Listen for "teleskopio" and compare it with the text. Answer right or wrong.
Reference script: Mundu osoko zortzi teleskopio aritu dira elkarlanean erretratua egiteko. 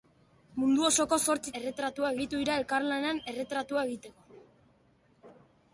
wrong